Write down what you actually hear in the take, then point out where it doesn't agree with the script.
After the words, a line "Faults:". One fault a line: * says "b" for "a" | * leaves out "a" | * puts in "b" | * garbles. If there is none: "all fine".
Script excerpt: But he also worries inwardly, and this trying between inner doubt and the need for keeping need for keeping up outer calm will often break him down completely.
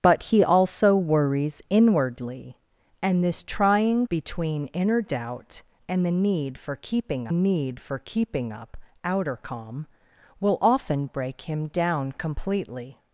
But he also worries inwardly, and this trying between inner doubt and the need for keeping need for keeping up outer calm will often break him down completely.
Faults:
all fine